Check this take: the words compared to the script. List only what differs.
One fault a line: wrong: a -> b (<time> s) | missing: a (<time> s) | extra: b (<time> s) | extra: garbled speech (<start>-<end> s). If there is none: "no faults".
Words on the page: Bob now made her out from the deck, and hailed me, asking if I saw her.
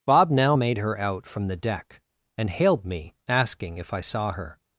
no faults